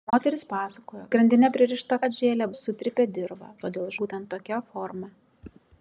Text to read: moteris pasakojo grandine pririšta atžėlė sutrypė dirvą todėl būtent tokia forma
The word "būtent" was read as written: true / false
true